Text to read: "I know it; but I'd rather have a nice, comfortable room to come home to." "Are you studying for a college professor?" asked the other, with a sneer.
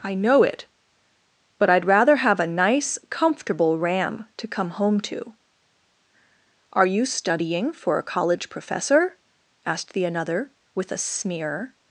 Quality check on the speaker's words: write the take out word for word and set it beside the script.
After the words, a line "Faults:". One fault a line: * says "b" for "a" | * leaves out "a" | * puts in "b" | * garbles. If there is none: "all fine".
"I know it; but I'd rather have a nice, comfortable ram to come home to." "Are you studying for a college professor?" asked the another, with a sneer.
Faults:
* says "ram" for "room"
* says "another" for "other"